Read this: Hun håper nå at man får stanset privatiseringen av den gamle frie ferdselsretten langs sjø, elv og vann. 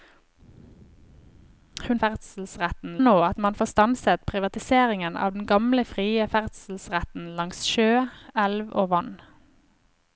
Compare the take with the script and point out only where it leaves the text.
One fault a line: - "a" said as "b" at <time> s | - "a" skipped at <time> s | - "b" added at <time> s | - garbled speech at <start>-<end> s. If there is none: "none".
- "håper" said as "ferdselsretten" at 2.0 s